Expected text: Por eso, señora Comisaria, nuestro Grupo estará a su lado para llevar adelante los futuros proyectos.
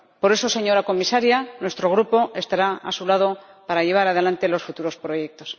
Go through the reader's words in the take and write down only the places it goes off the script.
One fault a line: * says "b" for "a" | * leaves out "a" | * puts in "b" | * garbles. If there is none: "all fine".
all fine